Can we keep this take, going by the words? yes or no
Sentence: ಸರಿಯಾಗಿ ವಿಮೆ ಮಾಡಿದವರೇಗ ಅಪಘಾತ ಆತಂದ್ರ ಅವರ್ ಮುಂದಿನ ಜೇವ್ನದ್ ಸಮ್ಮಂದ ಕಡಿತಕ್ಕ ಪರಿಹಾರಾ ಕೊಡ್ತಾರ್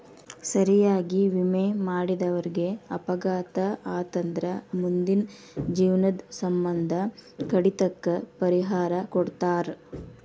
no